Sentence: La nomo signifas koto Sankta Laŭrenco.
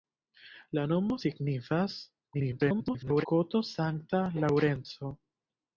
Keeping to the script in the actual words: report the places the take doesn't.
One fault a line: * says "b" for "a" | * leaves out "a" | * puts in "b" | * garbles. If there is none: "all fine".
* garbles